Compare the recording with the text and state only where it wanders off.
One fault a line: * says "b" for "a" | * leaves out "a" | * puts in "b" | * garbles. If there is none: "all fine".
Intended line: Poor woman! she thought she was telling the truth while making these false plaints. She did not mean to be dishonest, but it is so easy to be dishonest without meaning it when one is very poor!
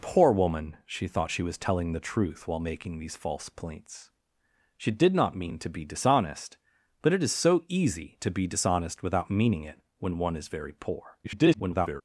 * garbles